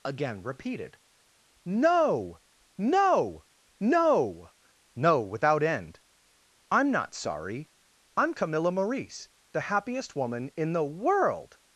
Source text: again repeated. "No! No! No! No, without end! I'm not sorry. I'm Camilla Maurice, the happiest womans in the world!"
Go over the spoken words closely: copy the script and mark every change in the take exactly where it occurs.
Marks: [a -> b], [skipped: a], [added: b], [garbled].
again repeated. "No! No! No! No, without end! I'm not sorry. I'm Camilla Maurice, the happiest [womans -> woman] in the world!"